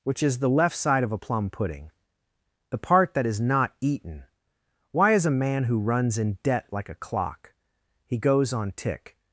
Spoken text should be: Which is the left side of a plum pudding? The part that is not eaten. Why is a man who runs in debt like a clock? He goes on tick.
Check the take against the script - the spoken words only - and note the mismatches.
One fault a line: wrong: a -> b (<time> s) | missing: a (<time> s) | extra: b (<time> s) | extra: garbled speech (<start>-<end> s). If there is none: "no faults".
no faults